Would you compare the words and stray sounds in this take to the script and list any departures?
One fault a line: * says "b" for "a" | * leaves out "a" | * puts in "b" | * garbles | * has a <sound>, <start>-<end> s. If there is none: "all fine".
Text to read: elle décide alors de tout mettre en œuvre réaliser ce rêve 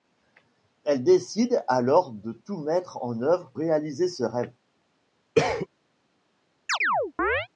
* has a cough, 5.4-5.7 s
* has a chirp, 6.7-7.5 s